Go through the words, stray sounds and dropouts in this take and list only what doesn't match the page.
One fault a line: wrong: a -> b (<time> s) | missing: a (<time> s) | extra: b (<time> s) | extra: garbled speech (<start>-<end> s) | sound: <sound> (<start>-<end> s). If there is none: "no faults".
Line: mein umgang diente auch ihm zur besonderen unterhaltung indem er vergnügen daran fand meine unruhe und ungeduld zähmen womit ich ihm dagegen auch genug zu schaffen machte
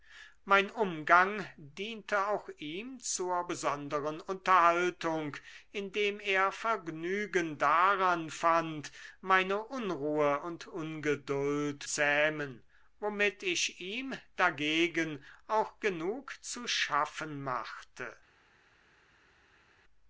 no faults